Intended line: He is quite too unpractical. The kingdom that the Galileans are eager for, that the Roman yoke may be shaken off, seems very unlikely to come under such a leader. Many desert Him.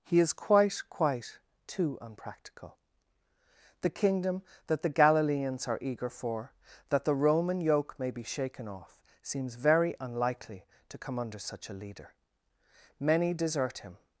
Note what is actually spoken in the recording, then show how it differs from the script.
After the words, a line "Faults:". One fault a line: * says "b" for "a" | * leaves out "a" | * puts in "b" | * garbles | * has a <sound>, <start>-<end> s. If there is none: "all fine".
He is quite quite too unpractical. The kingdom that the Galileans are eager for, that the Roman yoke may be shaken off, seems very unlikely to come under such a leader. Many desert Him.
Faults:
* puts in "quite"